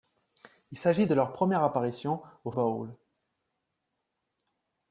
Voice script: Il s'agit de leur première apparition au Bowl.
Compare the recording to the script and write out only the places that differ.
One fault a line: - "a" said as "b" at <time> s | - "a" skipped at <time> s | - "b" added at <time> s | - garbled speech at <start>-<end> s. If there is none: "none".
none